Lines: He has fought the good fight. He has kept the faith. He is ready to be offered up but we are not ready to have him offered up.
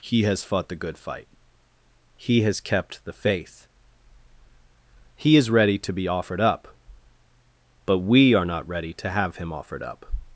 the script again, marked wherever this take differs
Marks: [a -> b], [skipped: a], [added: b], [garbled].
He has fought the good fight. He has kept the faith. He is ready to be offered up but we are not ready to have him offered up.